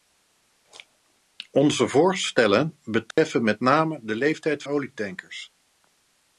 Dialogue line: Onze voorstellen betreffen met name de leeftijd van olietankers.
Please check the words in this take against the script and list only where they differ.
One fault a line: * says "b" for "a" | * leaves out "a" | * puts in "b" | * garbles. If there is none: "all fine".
* leaves out "van"